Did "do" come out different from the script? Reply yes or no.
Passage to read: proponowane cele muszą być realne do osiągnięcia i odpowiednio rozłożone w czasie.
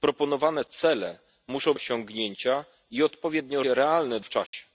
yes